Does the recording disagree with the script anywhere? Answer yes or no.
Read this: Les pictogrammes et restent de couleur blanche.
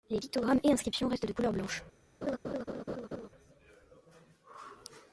yes